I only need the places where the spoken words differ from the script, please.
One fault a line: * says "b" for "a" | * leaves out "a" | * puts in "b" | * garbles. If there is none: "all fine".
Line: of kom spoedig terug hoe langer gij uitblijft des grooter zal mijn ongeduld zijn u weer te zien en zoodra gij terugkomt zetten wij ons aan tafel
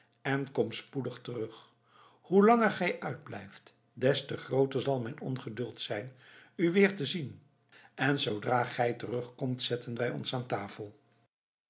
* says "en" for "of"
* puts in "te"